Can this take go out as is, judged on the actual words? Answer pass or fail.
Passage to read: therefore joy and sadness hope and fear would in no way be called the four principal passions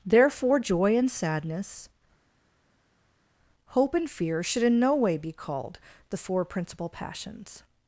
fail